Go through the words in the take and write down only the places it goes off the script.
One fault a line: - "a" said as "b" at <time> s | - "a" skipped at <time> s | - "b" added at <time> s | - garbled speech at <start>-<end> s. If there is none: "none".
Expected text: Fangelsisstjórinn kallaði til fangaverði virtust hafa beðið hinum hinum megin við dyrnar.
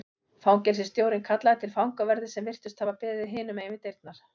- "sem" added at 2.4 s
- "hinum" skipped at 3.6 s